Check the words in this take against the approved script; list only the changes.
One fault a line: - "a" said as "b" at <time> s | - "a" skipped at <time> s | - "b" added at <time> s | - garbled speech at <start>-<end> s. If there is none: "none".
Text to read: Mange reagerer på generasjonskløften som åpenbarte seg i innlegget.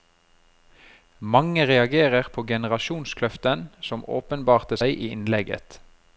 none